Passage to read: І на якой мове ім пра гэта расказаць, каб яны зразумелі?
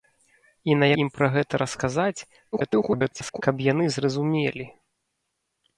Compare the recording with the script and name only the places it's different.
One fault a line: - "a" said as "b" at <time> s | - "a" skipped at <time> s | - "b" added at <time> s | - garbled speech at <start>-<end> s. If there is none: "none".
- "якой мове" skipped at 0.9 s
- garbled speech at 2.5-3.4 s